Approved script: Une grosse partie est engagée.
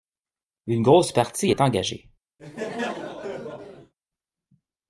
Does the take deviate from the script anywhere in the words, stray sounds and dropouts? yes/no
yes